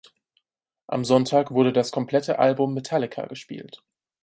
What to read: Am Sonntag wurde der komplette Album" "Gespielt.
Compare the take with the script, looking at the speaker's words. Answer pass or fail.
fail